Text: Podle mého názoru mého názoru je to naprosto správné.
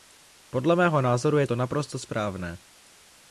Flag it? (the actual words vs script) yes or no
yes